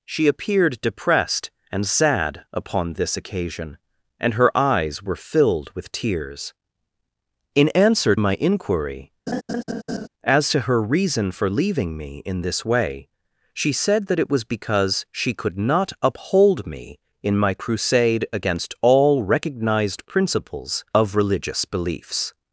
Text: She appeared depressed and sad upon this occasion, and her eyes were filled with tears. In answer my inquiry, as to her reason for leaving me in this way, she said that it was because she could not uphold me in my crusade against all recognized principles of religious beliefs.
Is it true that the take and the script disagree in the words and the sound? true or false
true